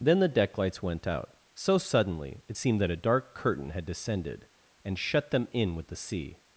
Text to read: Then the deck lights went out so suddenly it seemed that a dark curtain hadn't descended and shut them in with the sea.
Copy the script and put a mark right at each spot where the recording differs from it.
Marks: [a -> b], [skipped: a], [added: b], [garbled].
Then the deck lights went out so suddenly it seemed that a dark curtain [hadn't -> had] descended and shut them in with the sea.